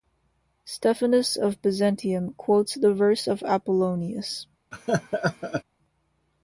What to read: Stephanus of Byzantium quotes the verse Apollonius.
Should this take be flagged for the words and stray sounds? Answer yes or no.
yes